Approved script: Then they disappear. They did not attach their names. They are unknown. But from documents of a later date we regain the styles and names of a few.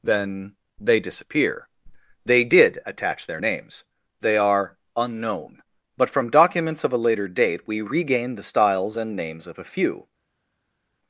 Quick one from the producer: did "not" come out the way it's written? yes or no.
no